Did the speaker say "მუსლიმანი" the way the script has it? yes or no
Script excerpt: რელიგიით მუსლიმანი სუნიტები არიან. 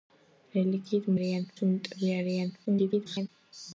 no